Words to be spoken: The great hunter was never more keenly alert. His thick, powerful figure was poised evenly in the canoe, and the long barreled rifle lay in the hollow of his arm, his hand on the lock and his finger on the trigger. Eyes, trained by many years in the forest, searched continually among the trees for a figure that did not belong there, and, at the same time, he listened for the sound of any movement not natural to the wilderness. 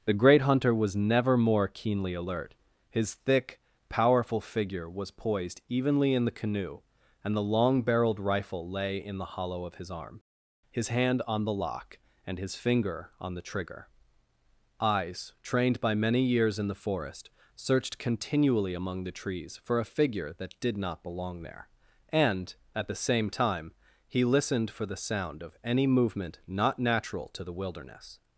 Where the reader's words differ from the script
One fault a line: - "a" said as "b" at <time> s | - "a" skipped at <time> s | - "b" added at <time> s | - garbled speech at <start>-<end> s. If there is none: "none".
none